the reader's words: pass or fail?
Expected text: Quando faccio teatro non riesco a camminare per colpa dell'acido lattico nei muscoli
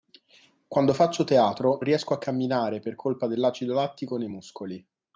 fail